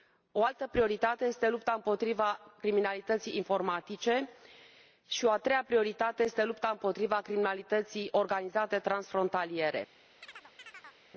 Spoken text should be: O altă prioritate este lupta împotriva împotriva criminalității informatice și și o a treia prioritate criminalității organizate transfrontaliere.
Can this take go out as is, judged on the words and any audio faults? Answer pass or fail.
fail